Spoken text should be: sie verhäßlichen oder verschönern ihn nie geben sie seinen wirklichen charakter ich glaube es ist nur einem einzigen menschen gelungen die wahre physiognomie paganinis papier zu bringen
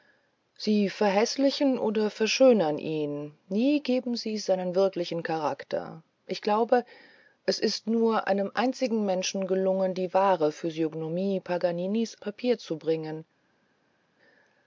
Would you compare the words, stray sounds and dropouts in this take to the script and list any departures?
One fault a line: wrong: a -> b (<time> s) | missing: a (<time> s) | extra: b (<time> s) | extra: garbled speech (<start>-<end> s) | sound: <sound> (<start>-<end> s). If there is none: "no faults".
no faults